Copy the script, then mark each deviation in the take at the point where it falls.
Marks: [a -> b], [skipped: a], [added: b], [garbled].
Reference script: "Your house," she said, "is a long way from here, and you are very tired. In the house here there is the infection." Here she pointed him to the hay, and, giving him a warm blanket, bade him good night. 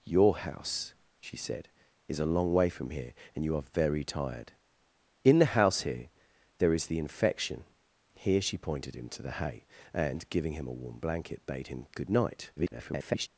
"Your house," she said, "is a long way from here, and you are very tired. In the house here there is the infection." Here she pointed him to the hay, and, giving him a warm blanket, bade him good night. [garbled]